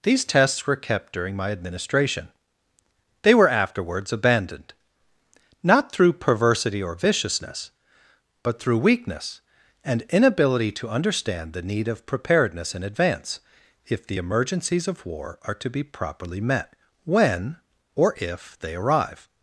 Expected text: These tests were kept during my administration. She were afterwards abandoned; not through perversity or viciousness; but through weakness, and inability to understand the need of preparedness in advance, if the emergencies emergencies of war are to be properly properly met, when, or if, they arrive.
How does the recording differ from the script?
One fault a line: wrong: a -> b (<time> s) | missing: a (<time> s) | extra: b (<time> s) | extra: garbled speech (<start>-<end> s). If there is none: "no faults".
wrong: She -> They (3.2 s)
missing: emergencies (14.9 s)
missing: properly (16.4 s)